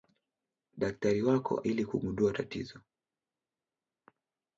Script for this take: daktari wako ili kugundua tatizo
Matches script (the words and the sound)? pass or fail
pass